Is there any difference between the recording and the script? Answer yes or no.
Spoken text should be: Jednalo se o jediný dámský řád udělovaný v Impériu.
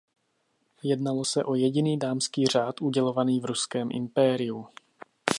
yes